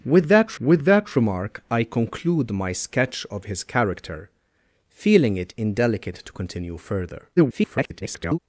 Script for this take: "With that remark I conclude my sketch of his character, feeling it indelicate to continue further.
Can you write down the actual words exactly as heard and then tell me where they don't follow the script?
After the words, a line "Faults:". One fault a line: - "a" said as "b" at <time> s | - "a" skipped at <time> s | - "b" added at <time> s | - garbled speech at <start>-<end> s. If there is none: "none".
"With that with that remark I conclude my sketch of his character, feeling it indelicate to continue further. [garbled]
Faults:
- "with that" added at 0.6 s
- garbled speech at 7.4-8.4 s